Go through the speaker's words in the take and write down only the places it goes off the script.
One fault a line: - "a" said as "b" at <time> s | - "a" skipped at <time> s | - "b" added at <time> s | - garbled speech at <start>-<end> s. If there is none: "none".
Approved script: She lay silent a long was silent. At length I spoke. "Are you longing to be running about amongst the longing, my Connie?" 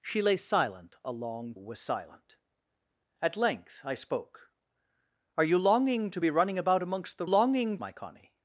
none